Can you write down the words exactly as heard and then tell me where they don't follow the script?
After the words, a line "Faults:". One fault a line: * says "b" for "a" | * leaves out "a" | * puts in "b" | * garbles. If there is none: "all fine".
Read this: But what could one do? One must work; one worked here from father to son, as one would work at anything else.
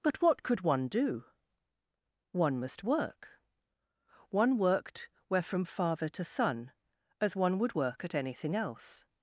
But what could one do? One must work; one worked where from father to son, as one would work at anything else.
Faults:
* says "where" for "here"